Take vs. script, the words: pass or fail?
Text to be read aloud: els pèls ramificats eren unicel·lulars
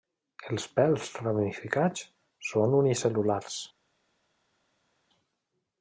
fail